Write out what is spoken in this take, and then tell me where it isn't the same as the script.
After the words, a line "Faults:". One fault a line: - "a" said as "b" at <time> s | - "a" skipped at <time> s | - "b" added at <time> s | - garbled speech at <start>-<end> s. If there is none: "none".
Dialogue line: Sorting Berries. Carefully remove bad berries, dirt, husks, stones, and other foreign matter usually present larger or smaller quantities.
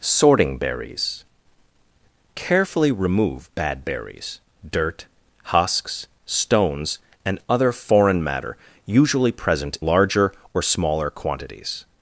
Sorting Berries. Carefully remove bad berries, dirt, husks, stones, and other foreign matter usually present larger or smaller quantities.
Faults:
none